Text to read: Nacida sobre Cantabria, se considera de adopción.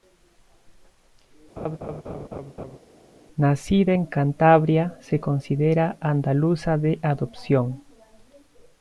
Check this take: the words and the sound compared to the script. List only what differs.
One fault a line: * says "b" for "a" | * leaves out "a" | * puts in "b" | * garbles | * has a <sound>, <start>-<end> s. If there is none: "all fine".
* has a laugh, 1.6-2.8 s
* says "en" for "sobre"
* puts in "andaluza"